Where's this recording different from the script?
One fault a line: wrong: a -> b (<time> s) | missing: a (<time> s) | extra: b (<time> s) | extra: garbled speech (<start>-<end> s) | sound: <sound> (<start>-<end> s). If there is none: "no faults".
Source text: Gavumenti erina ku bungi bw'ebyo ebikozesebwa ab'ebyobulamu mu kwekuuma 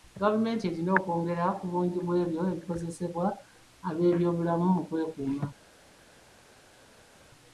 extra: okwongera (1.0 s)